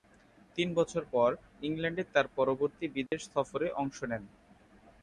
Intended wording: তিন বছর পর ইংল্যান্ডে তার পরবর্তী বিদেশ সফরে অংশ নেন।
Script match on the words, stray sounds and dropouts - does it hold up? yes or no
no